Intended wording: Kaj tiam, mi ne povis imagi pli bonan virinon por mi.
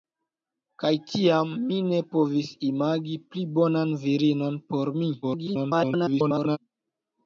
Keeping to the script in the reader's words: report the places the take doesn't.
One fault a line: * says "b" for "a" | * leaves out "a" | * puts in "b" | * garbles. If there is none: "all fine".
* garbles